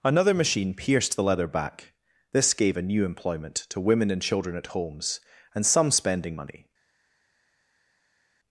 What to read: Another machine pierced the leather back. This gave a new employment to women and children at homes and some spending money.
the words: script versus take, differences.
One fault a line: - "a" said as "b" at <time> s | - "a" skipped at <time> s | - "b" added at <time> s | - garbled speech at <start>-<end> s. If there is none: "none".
none